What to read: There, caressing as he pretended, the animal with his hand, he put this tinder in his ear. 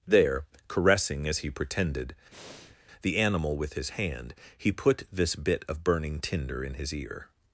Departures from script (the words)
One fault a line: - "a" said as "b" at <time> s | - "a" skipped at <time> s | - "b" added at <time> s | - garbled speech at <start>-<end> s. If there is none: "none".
- "bit of burning" added at 5.4 s